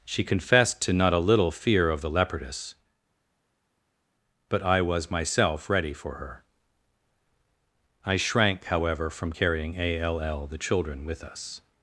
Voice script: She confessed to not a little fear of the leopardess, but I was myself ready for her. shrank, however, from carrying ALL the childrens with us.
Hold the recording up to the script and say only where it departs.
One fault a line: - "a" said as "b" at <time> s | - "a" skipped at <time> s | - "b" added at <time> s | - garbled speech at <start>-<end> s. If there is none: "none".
- "I" added at 8.0 s
- "childrens" said as "children" at 10.6 s